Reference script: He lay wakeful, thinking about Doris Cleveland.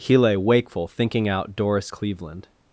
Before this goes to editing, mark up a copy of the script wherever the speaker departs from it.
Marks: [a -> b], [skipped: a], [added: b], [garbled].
He lay wakeful, thinking [about -> out] Doris Cleveland.